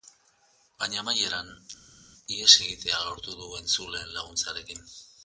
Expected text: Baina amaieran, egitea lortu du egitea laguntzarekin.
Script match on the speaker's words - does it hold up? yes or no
no